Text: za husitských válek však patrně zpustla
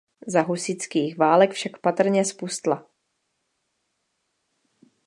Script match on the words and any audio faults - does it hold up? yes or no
yes